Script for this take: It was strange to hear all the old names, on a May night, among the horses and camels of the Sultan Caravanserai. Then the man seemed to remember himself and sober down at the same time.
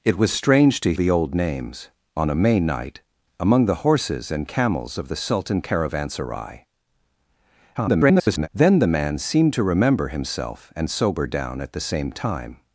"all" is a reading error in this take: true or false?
true